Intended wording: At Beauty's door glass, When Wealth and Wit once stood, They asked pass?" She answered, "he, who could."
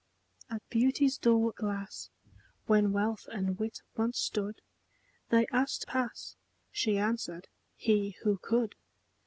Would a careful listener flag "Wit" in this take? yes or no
no